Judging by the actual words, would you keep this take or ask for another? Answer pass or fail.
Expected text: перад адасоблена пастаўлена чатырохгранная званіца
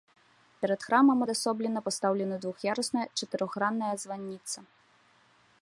fail